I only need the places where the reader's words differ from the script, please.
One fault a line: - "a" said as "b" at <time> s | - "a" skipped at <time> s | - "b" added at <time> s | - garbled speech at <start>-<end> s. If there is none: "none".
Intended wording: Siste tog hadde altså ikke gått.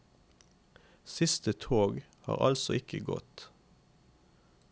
- "hadde" said as "har" at 2.2 s